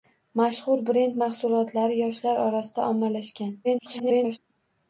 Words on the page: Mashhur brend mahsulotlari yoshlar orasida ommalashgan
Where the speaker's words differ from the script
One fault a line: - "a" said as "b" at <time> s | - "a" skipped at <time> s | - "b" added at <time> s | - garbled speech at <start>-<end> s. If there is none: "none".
- garbled speech at 3.6-4.4 s